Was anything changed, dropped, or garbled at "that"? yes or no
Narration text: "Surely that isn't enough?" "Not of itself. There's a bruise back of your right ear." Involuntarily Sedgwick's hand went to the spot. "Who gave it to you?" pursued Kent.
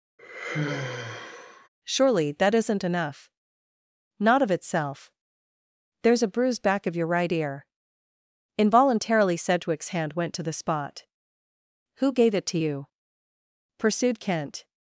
no